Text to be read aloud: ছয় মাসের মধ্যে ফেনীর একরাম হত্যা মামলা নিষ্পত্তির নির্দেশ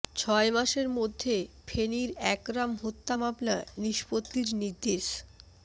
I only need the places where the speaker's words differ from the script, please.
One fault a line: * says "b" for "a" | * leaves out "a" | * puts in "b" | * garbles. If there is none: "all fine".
all fine